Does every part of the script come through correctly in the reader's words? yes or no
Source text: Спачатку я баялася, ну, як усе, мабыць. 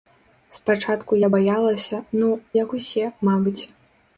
yes